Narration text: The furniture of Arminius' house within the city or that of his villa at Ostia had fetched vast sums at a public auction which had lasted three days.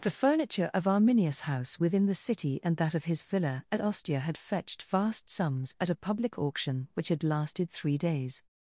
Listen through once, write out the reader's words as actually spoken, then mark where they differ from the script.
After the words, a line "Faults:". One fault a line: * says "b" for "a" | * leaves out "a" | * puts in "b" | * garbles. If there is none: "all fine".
The furniture of Arminius' house within the city and that of his villa at Ostia had fetched vast sums at a public auction which had lasted three days.
Faults:
* says "and" for "or"